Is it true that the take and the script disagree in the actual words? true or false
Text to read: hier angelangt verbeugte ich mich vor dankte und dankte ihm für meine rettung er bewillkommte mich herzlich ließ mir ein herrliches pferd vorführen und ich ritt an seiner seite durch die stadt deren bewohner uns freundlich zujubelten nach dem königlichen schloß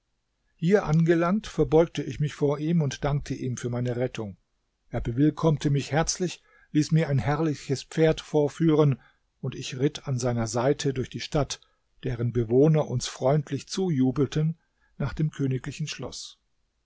true